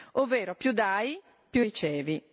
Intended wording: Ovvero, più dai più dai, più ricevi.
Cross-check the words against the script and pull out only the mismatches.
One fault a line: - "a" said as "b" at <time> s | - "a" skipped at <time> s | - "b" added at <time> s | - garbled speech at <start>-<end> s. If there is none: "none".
- "dai più" skipped at 1.6 s